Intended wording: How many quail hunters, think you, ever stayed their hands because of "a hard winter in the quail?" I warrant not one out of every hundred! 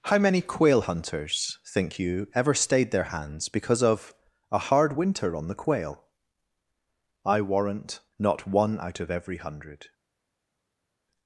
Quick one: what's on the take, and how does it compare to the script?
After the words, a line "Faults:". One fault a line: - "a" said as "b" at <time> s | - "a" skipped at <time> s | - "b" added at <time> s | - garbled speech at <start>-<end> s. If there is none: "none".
How many quail hunters, think you, ever stayed their hands because of "a hard winter on the quail?" I warrant not one out of every hundred!
Faults:
- "in" said as "on" at 5.4 s